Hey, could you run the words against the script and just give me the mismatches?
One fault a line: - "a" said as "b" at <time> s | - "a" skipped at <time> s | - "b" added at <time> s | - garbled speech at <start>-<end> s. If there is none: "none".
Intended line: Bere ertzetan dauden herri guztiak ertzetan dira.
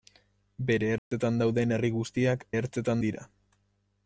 none